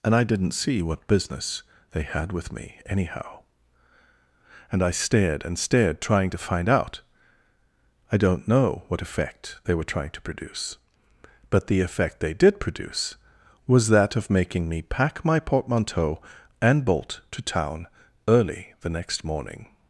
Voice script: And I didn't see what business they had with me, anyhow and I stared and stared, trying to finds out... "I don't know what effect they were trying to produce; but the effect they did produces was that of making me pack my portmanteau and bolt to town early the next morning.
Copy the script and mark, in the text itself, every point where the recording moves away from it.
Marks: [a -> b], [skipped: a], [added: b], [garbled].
And I didn't see what business they had with me, anyhow and I stared and stared, trying to [finds -> find] out... "I don't know what effect they were trying to produce; but the effect they did [produces -> produce] was that of making me pack my portmanteau and bolt to town early the next morning.